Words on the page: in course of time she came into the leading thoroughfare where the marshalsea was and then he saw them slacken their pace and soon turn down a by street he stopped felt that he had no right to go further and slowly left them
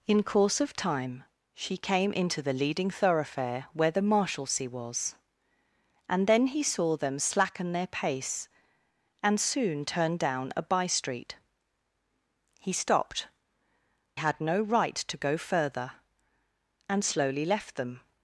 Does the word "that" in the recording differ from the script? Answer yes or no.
yes